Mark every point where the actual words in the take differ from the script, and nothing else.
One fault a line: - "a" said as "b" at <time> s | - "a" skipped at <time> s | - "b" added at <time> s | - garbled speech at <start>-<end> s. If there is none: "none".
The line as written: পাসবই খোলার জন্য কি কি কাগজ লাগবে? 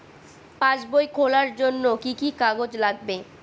none